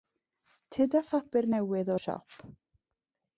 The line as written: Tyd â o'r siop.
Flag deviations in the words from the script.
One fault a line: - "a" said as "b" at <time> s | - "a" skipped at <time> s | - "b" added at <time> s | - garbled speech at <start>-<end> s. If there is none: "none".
- "phapur newydd" added at 1.1 s